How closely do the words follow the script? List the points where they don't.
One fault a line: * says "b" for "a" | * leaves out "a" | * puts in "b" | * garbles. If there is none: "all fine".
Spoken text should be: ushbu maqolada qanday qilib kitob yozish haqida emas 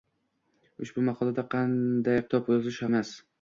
* leaves out "qilib"
* leaves out "haqida"